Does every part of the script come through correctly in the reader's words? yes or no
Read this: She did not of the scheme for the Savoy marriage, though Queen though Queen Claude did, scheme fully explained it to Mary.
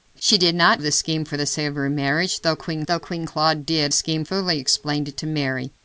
yes